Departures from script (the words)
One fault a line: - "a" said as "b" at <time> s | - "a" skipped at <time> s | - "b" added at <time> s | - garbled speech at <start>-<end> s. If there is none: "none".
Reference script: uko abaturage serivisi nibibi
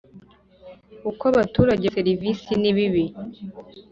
none